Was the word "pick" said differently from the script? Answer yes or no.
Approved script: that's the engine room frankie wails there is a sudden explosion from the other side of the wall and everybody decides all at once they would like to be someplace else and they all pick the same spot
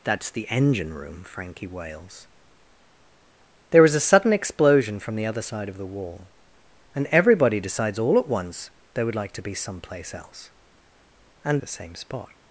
yes